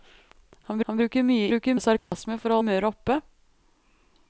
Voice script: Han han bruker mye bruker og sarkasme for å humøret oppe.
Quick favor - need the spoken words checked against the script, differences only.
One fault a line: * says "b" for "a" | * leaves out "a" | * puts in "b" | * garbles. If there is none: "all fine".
all fine